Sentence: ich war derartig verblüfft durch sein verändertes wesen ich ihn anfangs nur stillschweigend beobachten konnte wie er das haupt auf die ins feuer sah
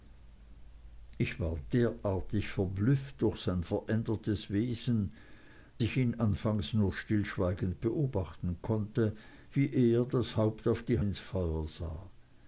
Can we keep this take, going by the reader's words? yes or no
yes